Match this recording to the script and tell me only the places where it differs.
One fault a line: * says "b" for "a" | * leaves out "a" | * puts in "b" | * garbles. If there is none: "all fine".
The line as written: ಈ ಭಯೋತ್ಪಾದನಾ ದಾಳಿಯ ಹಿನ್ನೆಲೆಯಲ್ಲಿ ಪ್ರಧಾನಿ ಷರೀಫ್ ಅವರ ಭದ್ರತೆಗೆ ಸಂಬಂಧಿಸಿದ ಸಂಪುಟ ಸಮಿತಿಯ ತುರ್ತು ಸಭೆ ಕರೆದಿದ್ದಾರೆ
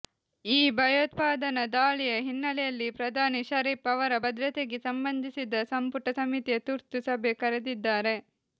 all fine